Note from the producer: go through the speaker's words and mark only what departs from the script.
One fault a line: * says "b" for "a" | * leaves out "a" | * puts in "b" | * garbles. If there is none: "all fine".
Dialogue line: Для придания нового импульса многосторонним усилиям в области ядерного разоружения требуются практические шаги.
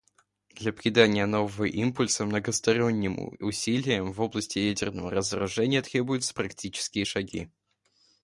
all fine